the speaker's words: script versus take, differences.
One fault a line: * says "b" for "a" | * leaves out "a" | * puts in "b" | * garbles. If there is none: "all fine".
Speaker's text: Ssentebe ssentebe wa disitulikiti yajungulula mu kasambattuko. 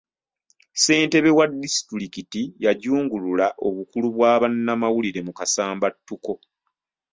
* leaves out "ssentebe"
* puts in "obukulu bwa bannamawulire"